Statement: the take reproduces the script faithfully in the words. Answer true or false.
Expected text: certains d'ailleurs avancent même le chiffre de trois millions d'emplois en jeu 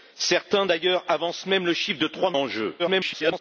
false